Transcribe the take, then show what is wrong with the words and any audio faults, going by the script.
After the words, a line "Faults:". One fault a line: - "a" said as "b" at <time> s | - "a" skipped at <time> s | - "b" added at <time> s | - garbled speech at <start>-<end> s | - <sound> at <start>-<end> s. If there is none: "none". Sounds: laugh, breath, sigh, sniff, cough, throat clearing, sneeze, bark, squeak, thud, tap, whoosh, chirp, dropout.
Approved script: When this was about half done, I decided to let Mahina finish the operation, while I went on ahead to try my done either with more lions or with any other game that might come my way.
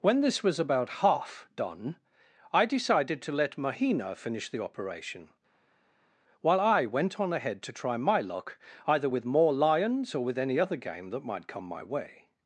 When this was about half done, I decided to let Mahina finish the operation, while I went on ahead to try my luck either with more lions or with any other game that might come my way.
Faults:
- "done" said as "luck" at 8.2 s